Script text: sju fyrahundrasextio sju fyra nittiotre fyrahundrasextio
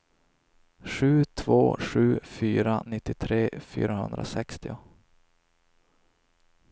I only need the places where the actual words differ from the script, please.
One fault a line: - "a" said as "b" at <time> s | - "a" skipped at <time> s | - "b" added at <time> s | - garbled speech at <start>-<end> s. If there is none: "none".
- "fyrahundrasextio" said as "två" at 1.2 s